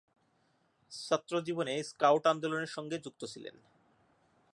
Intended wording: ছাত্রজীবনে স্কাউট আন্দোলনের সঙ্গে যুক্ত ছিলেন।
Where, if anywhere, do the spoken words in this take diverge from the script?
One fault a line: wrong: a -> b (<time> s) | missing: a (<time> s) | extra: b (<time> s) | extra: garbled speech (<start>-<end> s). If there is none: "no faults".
no faults